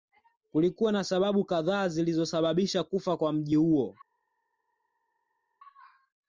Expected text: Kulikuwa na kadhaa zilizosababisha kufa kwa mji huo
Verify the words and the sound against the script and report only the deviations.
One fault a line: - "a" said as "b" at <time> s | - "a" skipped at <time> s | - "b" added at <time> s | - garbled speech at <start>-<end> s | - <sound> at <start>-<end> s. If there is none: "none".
- "sababu" added at 1.0 s